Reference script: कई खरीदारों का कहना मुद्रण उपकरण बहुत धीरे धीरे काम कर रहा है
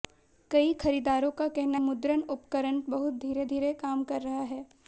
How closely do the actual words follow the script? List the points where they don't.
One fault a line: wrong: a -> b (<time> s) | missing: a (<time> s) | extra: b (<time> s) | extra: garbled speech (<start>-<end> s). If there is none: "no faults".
no faults